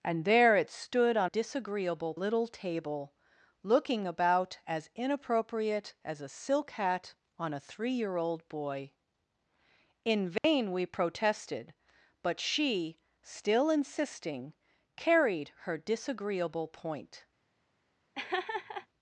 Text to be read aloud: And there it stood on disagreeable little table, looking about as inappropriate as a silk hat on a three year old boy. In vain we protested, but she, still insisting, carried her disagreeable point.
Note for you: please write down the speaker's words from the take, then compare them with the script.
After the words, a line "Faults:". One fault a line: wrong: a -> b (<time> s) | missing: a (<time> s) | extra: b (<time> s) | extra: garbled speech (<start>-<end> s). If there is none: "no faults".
And there it stood on disagreeable little table, looking about as inappropriate as a silk hat on a three year old boy. In vain we protested, but she, still insisting, carried her disagreeable point.
Faults:
no faults